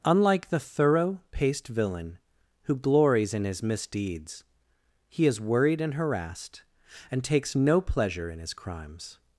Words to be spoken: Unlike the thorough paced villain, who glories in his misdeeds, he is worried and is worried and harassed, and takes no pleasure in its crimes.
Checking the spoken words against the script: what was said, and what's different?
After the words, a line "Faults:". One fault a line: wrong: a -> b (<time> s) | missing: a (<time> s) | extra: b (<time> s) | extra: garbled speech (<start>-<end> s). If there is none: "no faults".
Unlike the thorough paced villain, who glories in his misdeeds, he is worried and harassed, and takes no pleasure in his crimes.
Faults:
missing: is worried and (5.9 s)
wrong: its -> his (8.4 s)